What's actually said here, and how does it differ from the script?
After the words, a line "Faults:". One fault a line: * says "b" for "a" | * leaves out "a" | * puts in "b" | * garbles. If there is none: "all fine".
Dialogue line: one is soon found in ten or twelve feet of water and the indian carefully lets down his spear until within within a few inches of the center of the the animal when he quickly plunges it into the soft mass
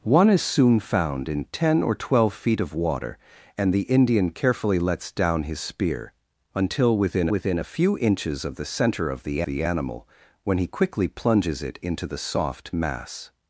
one is soon found in ten or twelve feet of water and the indian carefully lets down his spear until within within a few inches of the center of the the animal when he quickly plunges it into the soft mass
Faults:
all fine